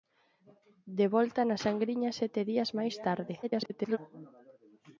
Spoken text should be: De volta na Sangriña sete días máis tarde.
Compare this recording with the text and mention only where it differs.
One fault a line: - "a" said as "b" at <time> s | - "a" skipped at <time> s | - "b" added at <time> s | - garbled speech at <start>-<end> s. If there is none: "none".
- garbled speech at 3.4-4.0 s